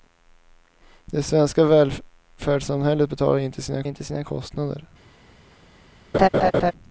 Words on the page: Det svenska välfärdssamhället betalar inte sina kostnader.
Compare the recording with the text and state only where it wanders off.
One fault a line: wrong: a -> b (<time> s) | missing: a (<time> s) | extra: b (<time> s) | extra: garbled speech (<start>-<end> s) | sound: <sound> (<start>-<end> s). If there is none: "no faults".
extra: inte sina (3.8 s)
sound: laugh (6.1-6.7 s)